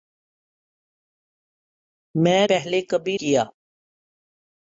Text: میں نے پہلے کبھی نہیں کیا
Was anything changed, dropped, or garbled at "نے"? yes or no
yes